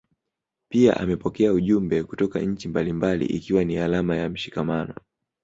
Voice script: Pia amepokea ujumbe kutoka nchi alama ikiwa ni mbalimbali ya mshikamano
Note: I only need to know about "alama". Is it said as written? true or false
false